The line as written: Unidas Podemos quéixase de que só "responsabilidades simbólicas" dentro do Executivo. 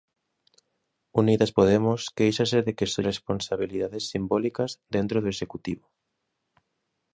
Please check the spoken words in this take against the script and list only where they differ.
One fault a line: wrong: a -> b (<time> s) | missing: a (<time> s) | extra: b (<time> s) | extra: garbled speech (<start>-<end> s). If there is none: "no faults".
no faults